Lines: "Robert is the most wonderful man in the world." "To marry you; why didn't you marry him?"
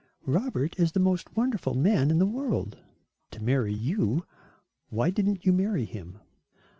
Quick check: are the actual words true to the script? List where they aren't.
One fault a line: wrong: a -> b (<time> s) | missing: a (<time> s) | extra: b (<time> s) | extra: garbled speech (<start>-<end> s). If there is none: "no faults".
no faults